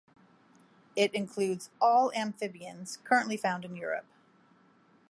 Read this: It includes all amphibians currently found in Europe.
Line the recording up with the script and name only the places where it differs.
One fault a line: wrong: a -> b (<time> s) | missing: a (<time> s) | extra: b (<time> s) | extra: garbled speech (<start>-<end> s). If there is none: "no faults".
no faults